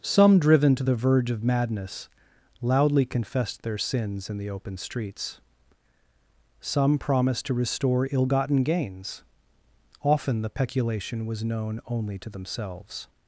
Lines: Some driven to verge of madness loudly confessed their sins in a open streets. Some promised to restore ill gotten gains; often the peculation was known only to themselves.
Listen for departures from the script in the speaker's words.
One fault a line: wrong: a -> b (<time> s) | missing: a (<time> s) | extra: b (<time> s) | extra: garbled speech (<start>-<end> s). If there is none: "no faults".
extra: the (0.8 s)
wrong: a -> the (4.4 s)